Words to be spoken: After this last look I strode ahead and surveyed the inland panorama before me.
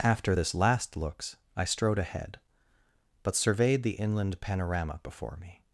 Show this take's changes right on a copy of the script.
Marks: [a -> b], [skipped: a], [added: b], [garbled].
After this last [look -> looks] I strode ahead [and -> but] surveyed the inland panorama before me.